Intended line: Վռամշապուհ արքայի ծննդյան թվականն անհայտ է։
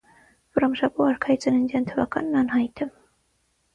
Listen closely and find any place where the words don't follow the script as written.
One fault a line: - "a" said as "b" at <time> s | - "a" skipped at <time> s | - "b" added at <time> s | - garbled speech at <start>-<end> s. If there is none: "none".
none